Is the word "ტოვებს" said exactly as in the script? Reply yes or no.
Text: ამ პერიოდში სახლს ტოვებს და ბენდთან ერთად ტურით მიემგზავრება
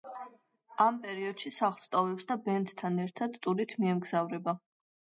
yes